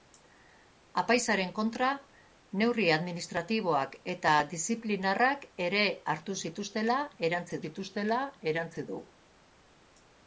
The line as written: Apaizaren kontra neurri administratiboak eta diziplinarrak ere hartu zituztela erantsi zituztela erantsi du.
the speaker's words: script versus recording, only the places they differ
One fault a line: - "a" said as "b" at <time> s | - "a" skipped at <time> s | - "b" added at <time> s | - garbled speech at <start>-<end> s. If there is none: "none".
none